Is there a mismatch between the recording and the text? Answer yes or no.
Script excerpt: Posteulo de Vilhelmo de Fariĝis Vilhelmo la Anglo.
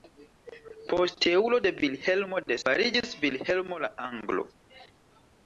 no